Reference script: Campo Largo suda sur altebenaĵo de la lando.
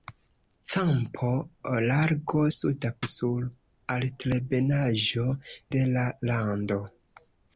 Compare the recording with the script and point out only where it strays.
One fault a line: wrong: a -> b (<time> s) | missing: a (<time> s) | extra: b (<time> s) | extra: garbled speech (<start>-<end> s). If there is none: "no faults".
no faults